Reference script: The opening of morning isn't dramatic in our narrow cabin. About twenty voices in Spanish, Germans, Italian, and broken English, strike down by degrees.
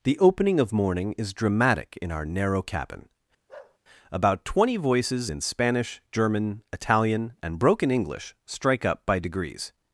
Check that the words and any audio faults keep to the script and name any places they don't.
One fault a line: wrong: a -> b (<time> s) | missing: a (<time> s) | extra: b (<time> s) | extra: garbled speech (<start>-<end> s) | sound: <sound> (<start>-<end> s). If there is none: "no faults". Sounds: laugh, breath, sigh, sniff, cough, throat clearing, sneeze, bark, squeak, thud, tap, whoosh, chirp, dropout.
wrong: isn't -> is (1.1 s)
sound: bark (3.5-3.8 s)
wrong: Germans -> German (6.1 s)
wrong: down -> up (8.8 s)